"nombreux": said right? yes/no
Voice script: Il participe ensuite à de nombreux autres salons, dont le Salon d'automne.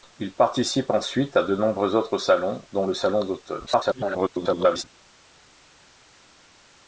yes